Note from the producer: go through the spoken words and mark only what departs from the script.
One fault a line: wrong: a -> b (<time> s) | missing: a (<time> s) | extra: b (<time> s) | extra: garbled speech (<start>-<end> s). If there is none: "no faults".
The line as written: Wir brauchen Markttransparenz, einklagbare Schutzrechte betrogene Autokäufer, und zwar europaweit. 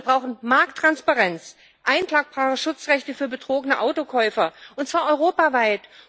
extra: für (3.1 s)